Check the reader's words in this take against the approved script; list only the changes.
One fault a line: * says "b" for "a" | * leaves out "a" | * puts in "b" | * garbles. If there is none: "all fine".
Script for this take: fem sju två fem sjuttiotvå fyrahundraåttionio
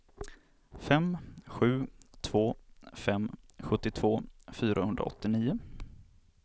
all fine